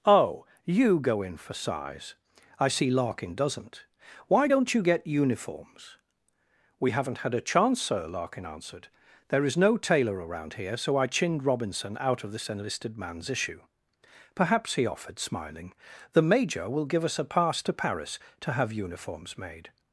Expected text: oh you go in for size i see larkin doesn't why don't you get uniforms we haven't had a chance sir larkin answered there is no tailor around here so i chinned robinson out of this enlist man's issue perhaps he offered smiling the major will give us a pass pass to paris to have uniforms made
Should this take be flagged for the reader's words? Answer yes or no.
yes